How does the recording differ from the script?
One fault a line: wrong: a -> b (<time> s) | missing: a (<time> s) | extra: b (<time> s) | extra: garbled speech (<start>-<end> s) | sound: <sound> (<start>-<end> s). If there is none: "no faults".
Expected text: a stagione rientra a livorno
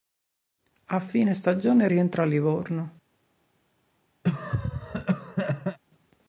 extra: fine (1.0 s)
sound: cough (4.2-5.8 s)